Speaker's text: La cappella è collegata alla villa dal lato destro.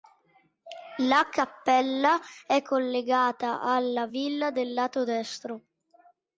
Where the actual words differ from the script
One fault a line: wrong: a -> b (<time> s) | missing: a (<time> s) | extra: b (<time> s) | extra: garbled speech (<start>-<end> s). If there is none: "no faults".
no faults